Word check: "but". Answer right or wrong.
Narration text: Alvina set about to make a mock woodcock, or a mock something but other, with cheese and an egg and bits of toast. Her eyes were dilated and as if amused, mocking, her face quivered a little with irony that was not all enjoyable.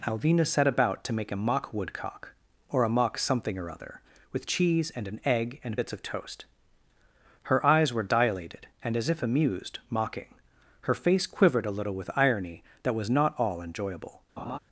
wrong